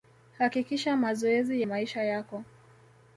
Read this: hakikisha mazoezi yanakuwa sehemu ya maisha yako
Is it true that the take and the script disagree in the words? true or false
true